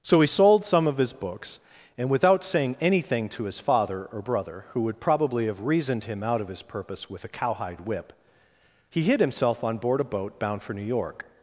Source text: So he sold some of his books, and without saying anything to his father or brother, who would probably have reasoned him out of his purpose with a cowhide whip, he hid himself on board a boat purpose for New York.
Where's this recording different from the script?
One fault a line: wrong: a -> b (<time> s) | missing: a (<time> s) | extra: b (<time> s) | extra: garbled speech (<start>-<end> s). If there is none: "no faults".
wrong: purpose -> bound (10.4 s)